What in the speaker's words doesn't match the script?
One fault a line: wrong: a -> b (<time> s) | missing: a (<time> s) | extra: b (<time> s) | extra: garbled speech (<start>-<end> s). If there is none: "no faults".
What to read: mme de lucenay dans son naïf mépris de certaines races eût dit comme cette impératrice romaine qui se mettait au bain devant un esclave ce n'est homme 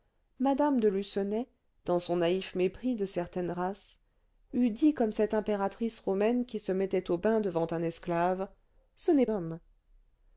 no faults